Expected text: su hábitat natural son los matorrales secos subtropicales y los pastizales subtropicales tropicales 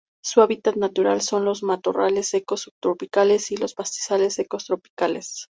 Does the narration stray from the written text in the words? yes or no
yes